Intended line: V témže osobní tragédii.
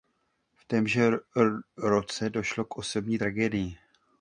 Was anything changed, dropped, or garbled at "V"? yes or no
no